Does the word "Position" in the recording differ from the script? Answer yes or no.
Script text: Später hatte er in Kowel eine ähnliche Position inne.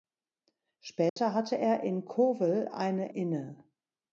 yes